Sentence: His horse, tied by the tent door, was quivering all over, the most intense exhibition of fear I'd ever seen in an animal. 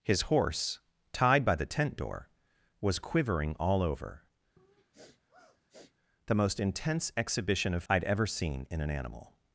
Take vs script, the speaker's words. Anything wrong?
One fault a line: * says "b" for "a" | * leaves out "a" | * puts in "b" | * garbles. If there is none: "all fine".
* leaves out "fear"